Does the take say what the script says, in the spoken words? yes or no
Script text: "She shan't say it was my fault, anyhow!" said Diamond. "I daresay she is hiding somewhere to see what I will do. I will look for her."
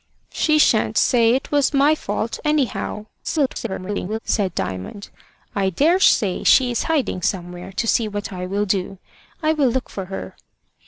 no